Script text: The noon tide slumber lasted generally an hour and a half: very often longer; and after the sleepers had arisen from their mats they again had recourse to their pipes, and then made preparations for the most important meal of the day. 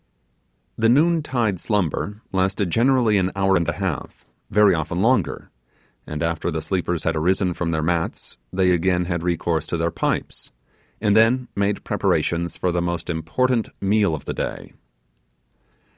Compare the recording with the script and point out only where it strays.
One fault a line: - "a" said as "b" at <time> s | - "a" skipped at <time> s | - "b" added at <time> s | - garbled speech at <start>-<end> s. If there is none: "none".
none